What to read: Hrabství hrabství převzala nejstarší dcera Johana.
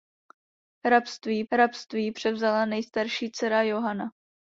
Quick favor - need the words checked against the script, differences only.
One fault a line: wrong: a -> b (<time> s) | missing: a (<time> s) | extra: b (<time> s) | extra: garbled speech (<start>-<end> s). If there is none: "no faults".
no faults